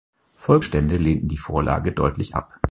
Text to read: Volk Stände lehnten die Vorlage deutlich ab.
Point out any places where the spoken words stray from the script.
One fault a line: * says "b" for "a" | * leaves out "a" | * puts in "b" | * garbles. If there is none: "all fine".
all fine